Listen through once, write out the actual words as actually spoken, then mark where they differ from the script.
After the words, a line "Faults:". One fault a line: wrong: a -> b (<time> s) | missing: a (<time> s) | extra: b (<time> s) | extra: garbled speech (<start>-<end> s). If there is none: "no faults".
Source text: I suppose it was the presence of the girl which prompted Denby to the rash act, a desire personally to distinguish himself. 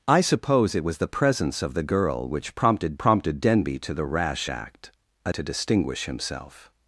I suppose it was the presence of the girl which prompted prompted Denby to the rash act, a to distinguish himself.
Faults:
extra: prompted (3.0 s)
missing: desire personally (5.3 s)